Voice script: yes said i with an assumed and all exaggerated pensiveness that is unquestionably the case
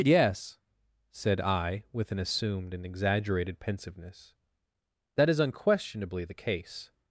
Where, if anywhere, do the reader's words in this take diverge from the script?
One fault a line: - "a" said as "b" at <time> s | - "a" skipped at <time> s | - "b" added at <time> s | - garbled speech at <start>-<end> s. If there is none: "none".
- "all" skipped at 2.9 s